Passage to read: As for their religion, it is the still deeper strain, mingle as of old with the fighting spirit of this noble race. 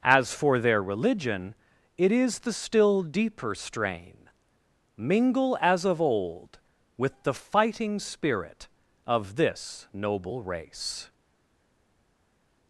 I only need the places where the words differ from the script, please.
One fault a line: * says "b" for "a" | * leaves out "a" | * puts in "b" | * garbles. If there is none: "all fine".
all fine